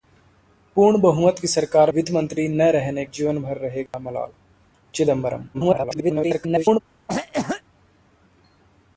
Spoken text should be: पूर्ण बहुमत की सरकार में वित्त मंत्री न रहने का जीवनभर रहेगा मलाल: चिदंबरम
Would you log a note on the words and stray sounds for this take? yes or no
yes